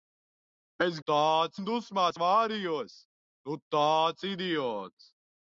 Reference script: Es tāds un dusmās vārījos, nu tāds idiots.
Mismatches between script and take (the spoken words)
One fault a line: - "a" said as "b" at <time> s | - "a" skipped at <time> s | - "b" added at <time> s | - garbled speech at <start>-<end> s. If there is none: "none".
none